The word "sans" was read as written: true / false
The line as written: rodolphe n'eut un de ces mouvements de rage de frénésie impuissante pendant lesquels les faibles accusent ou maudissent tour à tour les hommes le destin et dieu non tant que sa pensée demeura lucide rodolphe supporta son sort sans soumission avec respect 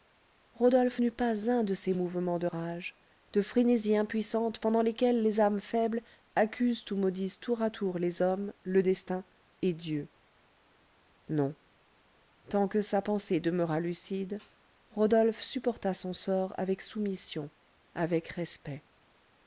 false